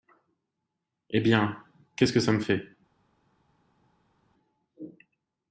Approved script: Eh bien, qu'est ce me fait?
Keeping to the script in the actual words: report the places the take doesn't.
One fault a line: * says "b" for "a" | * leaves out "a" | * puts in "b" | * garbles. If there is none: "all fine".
* puts in "que ça"